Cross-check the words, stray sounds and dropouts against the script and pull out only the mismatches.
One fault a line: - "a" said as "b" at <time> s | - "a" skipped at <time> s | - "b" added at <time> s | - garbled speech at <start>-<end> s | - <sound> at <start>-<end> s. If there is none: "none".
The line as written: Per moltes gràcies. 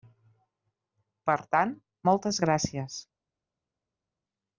- "tant" added at 1.6 s